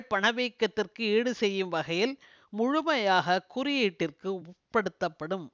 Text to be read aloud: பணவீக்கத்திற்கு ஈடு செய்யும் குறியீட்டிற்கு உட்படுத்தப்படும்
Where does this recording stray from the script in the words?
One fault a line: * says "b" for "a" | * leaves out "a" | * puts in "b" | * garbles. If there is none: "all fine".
* puts in "வகையில் முழுமையாக"